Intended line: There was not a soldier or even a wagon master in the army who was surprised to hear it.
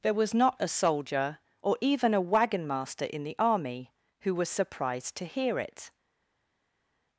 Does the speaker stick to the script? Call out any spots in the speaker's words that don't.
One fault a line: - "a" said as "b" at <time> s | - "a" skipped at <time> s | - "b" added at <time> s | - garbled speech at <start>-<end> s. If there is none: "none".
none